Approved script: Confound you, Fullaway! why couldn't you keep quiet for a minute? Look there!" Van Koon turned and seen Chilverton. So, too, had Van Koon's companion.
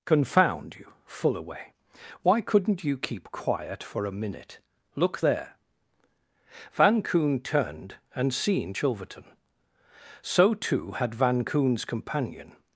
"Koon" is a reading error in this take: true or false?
false